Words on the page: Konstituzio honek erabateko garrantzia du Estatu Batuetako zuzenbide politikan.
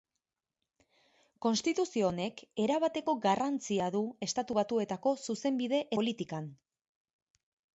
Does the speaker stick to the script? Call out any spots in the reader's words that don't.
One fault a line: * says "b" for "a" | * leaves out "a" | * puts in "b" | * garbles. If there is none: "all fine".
all fine